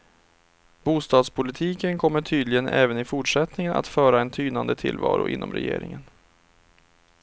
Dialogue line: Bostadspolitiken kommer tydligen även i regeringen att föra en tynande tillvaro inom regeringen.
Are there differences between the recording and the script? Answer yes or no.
yes